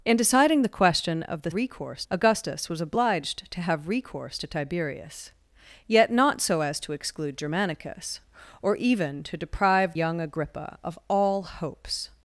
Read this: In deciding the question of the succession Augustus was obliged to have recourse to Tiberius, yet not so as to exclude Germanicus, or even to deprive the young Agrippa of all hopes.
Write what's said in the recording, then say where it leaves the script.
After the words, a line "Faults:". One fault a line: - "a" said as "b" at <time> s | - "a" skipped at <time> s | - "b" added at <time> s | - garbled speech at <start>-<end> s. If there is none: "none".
In deciding the question of the recourse Augustus was obliged to have recourse to Tiberius, yet not so as to exclude Germanicus, or even to deprive young Agrippa of all hopes.
Faults:
- "succession" said as "recourse" at 1.5 s
- "the" skipped at 9.9 s